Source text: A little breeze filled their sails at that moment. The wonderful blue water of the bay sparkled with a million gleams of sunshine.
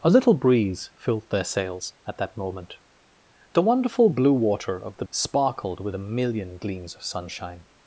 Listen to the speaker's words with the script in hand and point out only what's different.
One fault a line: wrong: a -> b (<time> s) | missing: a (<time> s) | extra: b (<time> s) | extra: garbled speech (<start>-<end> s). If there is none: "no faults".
missing: bay (5.0 s)